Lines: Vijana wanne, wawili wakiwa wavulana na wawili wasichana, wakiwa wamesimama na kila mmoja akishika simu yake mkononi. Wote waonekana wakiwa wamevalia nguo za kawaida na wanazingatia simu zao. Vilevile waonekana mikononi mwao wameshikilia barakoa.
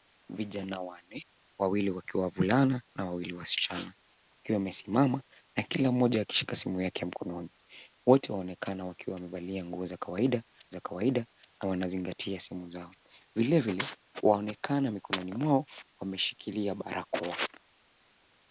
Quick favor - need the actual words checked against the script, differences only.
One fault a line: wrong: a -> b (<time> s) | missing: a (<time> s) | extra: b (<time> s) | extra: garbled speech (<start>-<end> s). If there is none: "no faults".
extra: za kawaida (10.7 s)